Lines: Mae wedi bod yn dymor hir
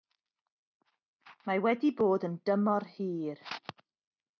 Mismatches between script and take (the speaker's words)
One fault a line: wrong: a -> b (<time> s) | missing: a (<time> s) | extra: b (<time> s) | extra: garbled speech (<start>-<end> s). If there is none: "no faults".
no faults